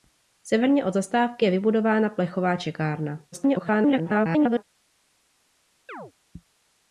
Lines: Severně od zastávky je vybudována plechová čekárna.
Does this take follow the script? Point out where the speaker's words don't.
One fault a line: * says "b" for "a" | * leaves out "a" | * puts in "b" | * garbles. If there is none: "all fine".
* garbles